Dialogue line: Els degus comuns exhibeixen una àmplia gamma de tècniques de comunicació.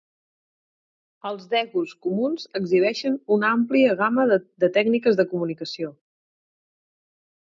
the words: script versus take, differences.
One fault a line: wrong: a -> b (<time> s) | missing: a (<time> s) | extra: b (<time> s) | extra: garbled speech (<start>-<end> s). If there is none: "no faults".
no faults